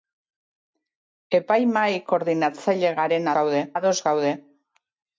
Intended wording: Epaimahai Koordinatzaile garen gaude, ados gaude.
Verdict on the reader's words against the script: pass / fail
pass